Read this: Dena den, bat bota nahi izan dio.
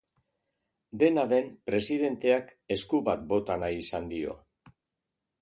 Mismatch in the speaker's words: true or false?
true